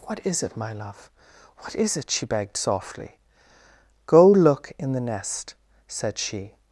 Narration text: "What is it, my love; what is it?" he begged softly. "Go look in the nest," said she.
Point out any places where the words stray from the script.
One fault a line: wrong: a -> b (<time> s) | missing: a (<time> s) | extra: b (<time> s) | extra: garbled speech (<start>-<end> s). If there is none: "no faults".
wrong: he -> she (2.1 s)